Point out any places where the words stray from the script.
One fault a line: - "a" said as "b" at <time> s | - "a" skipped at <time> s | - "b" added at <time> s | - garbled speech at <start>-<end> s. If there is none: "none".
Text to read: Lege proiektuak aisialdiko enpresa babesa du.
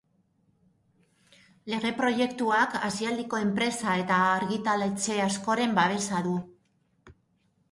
- "eta argitaletxe askoren" added at 4.0 s